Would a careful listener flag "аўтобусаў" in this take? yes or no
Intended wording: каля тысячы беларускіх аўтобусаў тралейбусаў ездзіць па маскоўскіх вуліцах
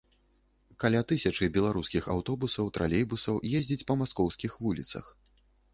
no